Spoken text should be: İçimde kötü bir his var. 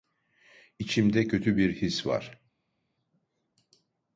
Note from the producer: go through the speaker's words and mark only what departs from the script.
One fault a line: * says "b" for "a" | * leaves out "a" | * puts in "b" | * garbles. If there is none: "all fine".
all fine